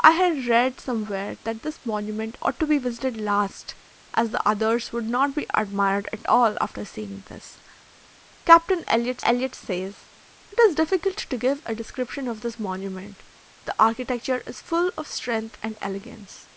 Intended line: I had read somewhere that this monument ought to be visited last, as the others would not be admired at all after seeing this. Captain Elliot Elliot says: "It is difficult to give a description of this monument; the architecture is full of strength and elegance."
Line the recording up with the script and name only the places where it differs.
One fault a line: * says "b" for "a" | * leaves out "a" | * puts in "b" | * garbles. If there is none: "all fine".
all fine